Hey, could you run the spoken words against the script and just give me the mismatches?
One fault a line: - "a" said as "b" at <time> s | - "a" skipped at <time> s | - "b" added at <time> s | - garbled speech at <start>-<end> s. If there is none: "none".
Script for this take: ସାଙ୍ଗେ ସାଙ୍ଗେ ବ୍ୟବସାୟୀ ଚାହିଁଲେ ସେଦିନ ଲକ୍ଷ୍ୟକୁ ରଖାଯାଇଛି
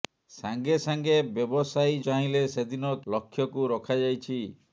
none